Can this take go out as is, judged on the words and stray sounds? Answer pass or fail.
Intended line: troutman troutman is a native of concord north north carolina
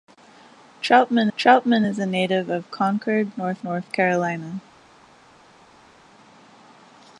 pass